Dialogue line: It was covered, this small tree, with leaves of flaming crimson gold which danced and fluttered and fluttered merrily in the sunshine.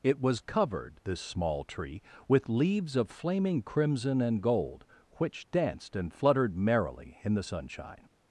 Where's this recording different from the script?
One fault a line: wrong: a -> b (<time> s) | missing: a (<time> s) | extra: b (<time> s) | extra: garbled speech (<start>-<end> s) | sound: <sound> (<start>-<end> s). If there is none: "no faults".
extra: and (4.2 s)
missing: and fluttered (6.6 s)